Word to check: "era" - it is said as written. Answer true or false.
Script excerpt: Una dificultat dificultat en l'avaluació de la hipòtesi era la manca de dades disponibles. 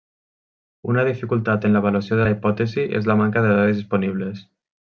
false